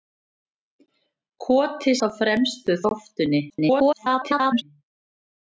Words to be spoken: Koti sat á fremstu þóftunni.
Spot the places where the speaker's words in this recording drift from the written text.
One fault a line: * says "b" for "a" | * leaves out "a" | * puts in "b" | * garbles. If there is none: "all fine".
* leaves out "sat"
* garbles